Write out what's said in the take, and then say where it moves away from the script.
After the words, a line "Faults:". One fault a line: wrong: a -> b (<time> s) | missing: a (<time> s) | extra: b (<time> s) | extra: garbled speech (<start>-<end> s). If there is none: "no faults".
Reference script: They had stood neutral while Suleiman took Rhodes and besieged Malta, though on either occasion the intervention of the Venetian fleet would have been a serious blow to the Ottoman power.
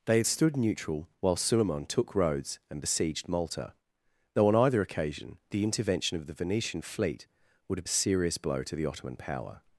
They had stood neutral while Suleiman took Rhodes and besieged Malta, though on either occasion the intervention of the Venetian fleet would have a serious blow to the Ottoman power.
Faults:
missing: been (7.9 s)